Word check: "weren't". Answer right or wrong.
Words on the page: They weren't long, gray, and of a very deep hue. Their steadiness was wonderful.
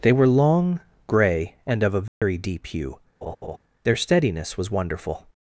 wrong